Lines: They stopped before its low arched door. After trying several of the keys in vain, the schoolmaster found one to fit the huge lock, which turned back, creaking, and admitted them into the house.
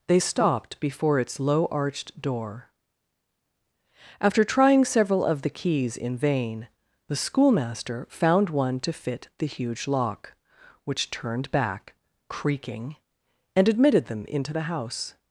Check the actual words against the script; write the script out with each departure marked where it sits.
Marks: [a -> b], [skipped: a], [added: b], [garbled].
They stopped before its low arched door. After trying several of the keys in vain, the schoolmaster found one to fit the huge lock, which turned back, creaking, and admitted them into the house.